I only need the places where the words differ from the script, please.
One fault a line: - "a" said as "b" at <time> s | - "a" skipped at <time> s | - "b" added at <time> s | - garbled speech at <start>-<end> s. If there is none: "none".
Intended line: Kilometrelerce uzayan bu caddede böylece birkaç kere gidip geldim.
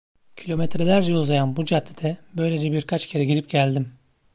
none